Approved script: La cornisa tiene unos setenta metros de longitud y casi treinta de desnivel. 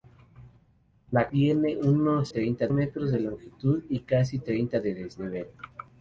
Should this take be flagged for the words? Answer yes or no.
yes